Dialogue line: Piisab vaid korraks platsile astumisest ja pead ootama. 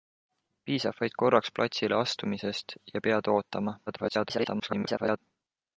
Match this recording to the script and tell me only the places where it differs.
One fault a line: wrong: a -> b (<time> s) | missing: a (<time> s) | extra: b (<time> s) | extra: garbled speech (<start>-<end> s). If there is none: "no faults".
extra: garbled speech (3.9-5.2 s)